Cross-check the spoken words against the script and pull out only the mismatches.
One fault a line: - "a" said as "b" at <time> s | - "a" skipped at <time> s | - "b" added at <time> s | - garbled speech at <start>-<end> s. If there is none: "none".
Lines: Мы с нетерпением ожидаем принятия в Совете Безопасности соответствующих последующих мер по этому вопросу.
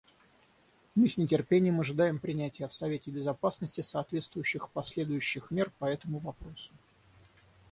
none